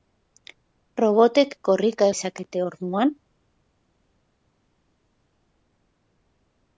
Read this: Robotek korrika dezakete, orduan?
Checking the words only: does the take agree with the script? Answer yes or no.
yes